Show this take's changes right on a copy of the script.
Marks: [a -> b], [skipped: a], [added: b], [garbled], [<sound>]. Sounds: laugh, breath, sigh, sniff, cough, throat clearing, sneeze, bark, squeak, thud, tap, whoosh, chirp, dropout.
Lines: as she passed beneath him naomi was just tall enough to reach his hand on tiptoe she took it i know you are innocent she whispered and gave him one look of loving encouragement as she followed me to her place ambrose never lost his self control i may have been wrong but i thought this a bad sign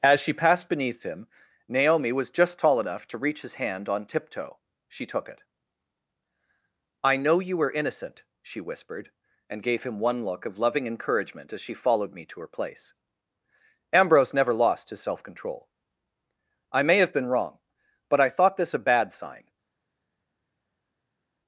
as she passed beneath him naomi was just tall enough to reach his hand on tiptoe she took it i know you [are -> were] innocent she whispered and gave him one look of loving encouragement as she followed me to her place ambrose never lost his self control i may have been wrong but i thought this a bad sign